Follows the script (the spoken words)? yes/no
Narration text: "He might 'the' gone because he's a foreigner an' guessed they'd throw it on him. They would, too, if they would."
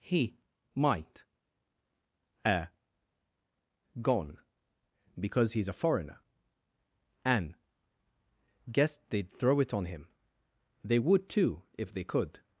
no